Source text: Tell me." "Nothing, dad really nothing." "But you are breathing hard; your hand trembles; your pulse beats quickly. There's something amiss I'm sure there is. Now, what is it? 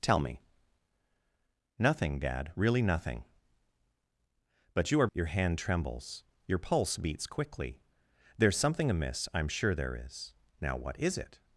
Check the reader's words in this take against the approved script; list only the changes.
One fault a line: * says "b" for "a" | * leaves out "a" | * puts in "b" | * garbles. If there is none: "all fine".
* leaves out "breathing hard"